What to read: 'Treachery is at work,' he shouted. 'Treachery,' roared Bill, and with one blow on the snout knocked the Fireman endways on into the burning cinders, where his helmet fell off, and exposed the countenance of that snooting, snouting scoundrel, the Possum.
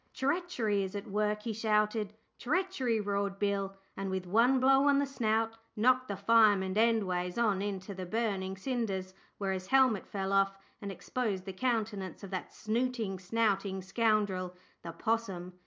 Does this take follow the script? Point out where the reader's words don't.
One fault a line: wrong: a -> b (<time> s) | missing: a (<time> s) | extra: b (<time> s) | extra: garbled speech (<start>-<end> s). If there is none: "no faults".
no faults